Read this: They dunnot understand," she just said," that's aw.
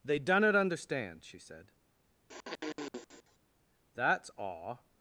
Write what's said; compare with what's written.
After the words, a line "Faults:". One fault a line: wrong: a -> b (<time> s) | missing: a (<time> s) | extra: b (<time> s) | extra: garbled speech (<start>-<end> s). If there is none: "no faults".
They dunnot understand," she said," that's aw.
Faults:
missing: just (1.4 s)